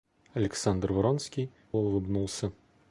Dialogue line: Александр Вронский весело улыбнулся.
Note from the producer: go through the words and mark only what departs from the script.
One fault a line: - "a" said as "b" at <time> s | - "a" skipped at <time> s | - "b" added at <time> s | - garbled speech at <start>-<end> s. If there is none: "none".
- "весело" skipped at 1.5 s